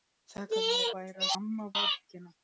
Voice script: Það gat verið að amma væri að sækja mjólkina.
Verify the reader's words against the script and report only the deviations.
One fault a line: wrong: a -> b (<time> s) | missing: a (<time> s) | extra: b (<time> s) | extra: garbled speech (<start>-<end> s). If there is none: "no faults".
missing: að amma (0.9 s)
wrong: sækja -> amma (1.4 s)